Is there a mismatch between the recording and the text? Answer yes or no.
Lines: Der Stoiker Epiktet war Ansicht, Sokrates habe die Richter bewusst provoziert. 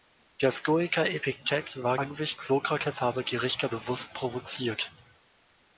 no